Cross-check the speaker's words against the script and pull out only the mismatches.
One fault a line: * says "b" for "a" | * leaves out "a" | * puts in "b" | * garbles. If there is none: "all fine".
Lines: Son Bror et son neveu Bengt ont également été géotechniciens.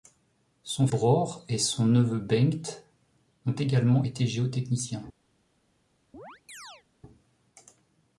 all fine